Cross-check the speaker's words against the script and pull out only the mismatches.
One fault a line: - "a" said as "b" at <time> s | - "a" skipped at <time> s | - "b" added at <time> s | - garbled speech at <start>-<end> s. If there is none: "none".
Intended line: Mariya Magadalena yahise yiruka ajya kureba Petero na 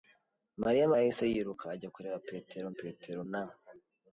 - "Magadalena" skipped at 0.9 s
- "Petero" added at 2.8 s